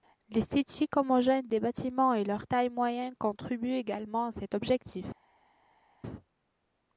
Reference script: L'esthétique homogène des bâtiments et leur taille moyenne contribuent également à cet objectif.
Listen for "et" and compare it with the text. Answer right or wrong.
right